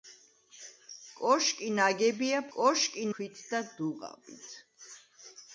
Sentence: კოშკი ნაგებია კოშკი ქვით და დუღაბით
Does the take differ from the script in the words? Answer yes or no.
no